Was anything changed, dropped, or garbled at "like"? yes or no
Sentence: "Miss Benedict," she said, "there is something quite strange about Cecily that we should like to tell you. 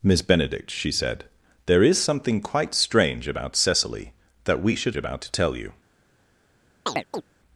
yes